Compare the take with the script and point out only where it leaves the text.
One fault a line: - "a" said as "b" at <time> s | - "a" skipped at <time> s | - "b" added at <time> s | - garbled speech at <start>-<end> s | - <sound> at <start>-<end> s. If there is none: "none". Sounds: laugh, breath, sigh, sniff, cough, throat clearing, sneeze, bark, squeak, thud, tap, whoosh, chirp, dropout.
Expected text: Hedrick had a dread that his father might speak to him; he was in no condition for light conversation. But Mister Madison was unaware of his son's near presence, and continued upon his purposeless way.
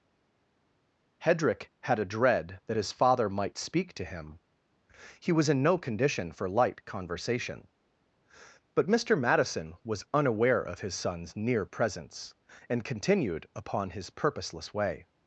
none